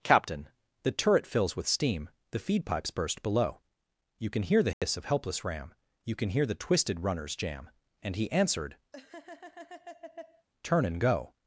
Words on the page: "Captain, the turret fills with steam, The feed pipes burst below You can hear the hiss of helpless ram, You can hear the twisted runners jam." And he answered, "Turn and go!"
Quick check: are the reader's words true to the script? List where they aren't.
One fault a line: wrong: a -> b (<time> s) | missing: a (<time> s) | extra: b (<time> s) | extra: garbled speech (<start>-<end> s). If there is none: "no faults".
no faults